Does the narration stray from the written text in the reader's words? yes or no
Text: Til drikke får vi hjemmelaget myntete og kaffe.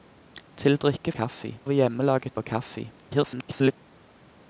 yes